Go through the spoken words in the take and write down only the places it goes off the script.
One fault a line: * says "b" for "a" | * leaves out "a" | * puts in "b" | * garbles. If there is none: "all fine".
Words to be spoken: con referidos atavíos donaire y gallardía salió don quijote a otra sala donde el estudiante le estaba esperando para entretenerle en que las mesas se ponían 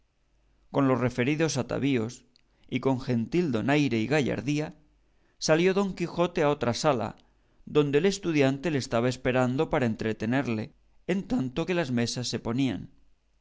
* puts in "los"
* puts in "y con gentil"
* puts in "tanto"